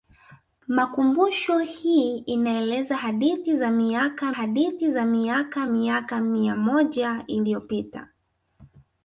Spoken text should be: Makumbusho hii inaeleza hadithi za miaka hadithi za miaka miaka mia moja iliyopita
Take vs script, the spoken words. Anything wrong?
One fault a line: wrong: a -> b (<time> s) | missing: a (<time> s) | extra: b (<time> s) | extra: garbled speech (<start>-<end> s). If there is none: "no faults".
no faults